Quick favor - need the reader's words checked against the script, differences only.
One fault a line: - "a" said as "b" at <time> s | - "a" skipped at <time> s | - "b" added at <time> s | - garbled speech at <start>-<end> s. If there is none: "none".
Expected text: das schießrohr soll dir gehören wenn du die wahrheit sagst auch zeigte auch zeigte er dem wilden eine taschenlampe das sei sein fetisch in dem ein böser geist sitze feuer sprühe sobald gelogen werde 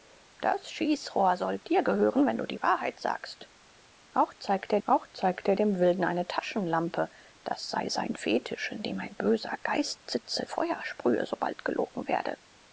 none